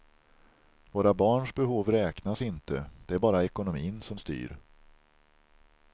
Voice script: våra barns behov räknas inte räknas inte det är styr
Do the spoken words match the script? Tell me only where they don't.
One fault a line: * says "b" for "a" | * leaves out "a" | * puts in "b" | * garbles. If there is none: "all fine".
* says "det är bara ekonomin som" for "räknas inte det är"